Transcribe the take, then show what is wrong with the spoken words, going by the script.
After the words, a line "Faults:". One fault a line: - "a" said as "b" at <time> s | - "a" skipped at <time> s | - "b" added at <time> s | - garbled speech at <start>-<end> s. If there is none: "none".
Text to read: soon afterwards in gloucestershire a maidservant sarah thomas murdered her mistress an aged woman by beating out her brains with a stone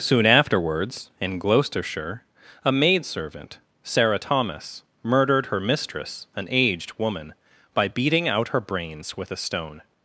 soon afterwards in gloucestershire a maidservant sarah thomas murdered her mistress an aged woman by beating out her brains with a stone
Faults:
none